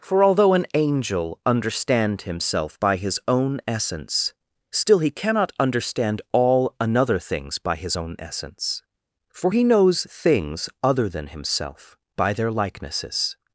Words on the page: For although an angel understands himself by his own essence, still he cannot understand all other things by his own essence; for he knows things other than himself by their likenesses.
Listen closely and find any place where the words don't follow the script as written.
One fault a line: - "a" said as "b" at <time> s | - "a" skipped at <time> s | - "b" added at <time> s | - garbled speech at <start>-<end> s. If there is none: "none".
- "understands" said as "understand" at 1.4 s
- "other" said as "another" at 6.8 s